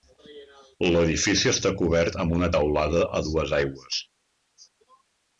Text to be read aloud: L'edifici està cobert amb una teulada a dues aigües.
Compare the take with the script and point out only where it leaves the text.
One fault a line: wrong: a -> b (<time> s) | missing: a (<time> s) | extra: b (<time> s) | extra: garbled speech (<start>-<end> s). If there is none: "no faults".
no faults